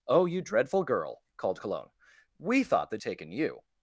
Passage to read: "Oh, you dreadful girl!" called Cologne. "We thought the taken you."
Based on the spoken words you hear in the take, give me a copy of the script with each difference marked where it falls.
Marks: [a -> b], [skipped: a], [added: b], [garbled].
"Oh, you dreadful girl!" called Cologne. "We thought the taken you."